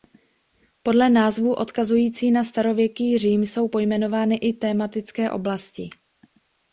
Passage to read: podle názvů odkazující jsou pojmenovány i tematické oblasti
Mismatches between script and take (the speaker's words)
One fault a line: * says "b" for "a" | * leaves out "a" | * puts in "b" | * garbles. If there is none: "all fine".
* puts in "na starověký řím"